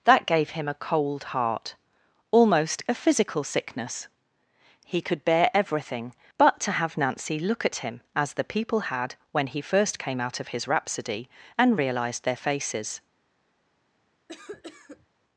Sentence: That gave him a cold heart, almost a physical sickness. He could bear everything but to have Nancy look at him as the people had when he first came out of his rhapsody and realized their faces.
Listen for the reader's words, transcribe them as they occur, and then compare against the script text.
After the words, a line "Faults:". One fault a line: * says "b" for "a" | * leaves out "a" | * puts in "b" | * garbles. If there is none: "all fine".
That gave him a cold heart, almost a physical sickness. He could bear everything but to have Nancy look at him as the people had when he first came out of his rhapsody and realized their faces.
Faults:
all fine